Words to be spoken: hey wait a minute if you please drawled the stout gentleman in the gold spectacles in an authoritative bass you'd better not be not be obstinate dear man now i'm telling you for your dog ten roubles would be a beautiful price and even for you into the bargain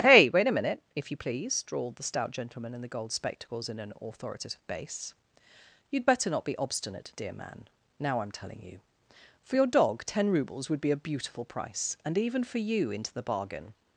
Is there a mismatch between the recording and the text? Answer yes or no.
yes